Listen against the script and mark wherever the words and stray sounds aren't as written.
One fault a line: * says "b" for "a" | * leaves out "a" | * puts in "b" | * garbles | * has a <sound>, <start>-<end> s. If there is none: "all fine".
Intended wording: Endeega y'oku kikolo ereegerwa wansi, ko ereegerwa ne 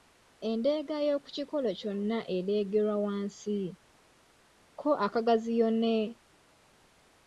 * puts in "kyonna"
* says "akagaziyo" for "ereegerwa"